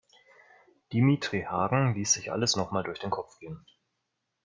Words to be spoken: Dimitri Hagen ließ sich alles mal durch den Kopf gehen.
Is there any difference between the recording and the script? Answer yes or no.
yes